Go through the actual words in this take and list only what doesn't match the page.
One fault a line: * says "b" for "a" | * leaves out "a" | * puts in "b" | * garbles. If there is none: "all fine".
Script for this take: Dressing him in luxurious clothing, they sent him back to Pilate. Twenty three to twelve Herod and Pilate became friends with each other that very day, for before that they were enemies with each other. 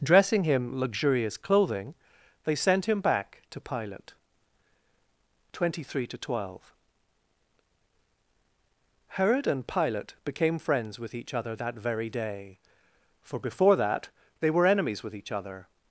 * leaves out "in"